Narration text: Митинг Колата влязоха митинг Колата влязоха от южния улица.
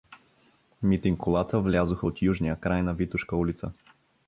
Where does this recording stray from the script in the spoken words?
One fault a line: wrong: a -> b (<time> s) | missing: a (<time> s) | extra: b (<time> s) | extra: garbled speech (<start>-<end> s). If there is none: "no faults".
wrong: митинг Колата влязоха от южния -> от южния край на Витошка (2.0 s)